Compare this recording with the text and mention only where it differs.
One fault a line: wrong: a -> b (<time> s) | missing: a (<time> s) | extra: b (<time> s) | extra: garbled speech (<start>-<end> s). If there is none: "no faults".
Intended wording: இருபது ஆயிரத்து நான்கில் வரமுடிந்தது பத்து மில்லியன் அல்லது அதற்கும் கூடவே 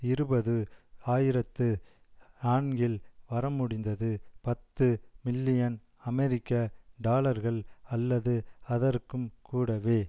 extra: அமெரிக்க டாலர்கள் (6.0 s)